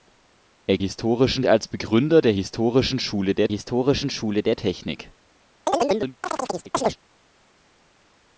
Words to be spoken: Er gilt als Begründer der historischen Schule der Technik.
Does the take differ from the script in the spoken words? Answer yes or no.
yes